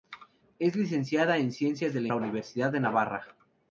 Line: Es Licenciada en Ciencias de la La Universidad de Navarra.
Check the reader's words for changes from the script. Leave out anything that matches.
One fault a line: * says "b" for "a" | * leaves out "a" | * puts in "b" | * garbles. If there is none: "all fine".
all fine